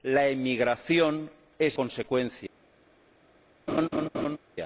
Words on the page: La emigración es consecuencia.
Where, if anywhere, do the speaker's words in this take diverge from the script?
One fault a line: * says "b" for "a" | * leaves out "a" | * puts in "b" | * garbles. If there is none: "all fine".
all fine